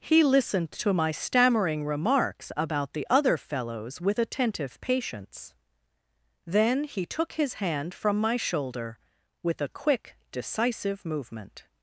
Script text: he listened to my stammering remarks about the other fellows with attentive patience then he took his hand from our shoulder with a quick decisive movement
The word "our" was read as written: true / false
false